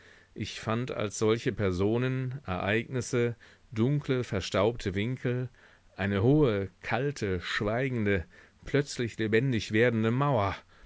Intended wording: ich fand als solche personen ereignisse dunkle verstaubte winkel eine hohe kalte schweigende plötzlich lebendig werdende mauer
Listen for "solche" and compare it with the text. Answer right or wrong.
right